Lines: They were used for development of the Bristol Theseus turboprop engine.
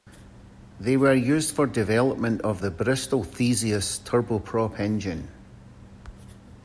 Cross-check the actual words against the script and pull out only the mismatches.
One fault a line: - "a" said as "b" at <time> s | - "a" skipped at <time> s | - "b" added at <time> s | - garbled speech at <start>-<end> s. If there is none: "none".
none